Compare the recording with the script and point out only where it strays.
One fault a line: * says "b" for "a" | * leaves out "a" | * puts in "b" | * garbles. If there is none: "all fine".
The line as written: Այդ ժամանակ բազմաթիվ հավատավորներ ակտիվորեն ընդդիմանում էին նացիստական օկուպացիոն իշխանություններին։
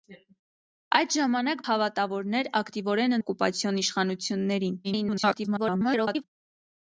* leaves out "բազմաթիվ"
* leaves out "ընդդիմանում էին նացիստական"
* garbles